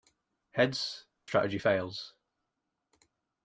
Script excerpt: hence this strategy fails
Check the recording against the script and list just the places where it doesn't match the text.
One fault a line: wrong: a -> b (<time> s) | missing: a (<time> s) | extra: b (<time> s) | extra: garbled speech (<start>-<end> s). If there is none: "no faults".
missing: this (1.1 s)